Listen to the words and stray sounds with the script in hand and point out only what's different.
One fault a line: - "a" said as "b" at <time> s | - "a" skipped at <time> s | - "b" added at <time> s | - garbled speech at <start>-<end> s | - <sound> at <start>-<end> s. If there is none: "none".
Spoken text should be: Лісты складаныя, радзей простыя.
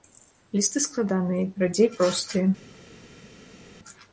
none